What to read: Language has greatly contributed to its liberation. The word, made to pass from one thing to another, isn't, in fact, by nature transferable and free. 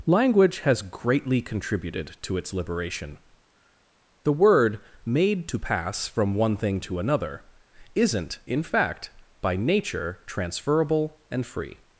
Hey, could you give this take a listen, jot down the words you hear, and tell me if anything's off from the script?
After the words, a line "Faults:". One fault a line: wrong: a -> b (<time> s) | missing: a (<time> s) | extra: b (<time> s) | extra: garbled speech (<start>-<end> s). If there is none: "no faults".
Language has greatly contributed to its liberation. The word, made to pass from one thing to another, isn't, in fact, by nature transferable and free.
Faults:
no faults